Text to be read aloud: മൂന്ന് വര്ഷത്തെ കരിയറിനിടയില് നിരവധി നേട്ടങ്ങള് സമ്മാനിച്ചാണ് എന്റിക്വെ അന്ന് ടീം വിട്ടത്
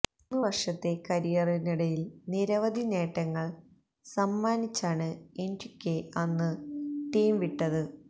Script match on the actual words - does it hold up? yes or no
yes